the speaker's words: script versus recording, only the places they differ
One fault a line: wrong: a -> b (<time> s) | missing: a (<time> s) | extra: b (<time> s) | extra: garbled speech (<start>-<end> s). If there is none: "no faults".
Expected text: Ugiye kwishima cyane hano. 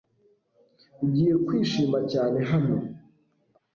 no faults